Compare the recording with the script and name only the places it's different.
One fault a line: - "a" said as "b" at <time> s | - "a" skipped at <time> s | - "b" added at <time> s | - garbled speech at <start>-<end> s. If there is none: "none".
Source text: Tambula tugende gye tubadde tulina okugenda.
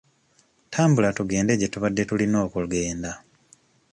none